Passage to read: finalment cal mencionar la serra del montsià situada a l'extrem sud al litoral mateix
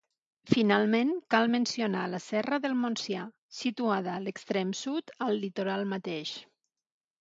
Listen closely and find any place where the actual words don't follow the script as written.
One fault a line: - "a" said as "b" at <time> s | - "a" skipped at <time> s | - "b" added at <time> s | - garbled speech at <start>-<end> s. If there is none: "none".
none